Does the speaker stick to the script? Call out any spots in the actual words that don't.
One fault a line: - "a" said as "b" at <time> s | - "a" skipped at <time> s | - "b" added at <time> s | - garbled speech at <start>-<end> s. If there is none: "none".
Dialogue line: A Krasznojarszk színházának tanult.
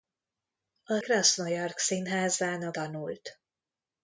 none